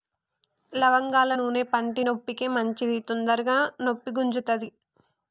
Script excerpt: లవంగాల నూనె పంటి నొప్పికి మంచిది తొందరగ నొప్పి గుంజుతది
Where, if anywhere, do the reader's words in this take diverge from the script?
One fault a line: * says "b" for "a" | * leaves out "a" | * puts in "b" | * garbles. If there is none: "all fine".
all fine